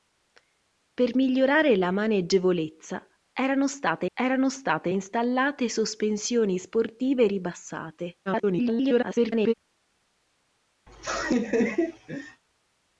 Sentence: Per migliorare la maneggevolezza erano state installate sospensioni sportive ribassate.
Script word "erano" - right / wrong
right